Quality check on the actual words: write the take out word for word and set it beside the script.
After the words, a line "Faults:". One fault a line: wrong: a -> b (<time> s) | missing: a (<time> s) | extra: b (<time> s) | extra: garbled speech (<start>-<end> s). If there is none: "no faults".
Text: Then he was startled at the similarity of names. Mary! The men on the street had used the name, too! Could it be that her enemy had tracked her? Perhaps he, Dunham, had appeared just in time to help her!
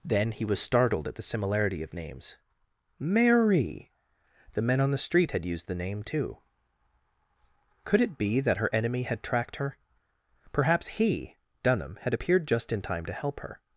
Then he was startled at the similarity of names. Mary! The men on the street had used the name, too! Could it be that her enemy had tracked her? Perhaps he, Dunham, had appeared just in time to help her!
Faults:
no faults